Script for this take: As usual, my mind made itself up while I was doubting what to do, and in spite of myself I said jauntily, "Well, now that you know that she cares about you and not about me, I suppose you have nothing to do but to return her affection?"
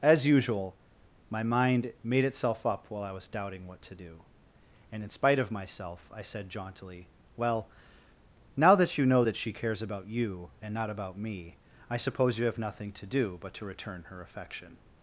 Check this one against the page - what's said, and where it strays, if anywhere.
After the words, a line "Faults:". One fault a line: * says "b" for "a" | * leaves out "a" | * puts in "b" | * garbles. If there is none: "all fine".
As usual, my mind made itself up while I was doubting what to do, and in spite of myself I said jauntily, "Well, now that you know that she cares about you and not about me, I suppose you have nothing to do but to return her affection?"
Faults:
all fine